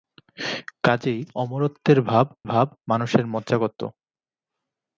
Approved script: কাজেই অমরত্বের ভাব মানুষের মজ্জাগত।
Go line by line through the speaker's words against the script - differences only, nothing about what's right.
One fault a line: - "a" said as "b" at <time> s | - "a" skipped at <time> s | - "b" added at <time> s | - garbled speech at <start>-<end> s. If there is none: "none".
- "ভাব" added at 2.4 s